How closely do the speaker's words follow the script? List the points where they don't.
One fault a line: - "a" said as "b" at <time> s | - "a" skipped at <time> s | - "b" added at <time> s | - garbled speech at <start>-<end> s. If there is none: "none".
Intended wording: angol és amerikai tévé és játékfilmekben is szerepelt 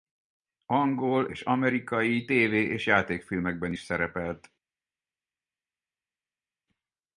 none